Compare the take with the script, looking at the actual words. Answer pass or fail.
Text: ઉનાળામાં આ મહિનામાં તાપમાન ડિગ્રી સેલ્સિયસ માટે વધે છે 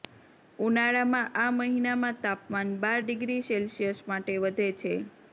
fail